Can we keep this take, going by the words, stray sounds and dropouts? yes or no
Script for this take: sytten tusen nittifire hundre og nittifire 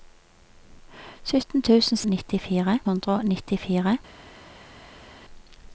yes